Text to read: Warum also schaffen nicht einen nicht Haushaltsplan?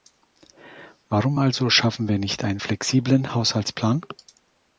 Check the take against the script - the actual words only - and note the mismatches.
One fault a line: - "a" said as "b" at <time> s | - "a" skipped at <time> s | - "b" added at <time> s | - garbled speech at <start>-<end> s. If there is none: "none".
- "wir" added at 2.1 s
- "nicht" said as "flexiblen" at 2.6 s